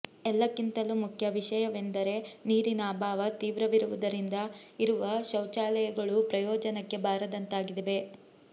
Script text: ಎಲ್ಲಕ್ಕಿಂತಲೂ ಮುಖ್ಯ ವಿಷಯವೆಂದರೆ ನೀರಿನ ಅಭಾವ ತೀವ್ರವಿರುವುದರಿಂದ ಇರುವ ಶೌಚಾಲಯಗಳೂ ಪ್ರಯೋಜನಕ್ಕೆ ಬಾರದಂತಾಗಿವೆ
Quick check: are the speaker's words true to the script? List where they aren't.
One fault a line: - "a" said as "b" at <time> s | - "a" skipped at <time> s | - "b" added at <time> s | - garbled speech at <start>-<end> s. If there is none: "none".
none